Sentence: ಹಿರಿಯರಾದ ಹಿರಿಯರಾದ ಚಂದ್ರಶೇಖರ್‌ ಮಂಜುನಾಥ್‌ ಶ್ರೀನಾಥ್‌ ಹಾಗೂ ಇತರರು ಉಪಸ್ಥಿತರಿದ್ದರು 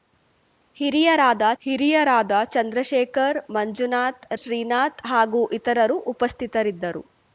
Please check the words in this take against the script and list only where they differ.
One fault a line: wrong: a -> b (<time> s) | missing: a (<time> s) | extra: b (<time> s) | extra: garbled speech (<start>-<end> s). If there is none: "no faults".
no faults